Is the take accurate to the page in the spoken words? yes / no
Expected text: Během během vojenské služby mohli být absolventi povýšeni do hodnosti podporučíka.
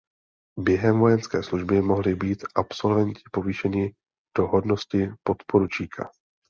no